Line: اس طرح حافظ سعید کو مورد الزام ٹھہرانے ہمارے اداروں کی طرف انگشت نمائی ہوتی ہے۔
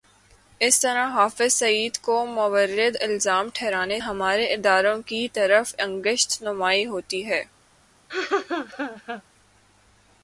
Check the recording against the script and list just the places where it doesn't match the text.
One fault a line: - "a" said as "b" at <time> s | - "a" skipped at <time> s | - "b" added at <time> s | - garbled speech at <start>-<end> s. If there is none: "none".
none